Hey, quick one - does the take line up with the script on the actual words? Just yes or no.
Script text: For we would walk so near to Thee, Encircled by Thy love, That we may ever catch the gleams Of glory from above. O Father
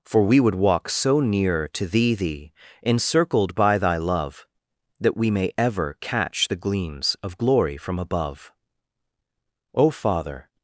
no